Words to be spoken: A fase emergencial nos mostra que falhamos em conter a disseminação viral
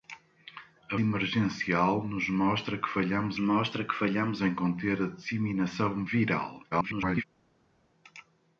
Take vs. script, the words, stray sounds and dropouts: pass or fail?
fail